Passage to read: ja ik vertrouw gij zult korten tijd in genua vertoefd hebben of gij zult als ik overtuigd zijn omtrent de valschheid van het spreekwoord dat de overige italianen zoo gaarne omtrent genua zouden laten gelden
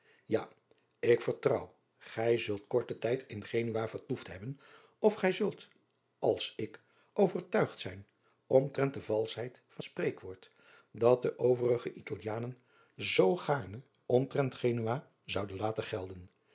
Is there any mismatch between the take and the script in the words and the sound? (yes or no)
yes